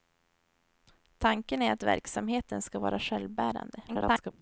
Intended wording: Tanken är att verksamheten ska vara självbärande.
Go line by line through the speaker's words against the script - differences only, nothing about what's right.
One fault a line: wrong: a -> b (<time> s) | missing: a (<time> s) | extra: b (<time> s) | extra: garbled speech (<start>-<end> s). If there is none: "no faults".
extra: garbled speech (3.9-4.3 s)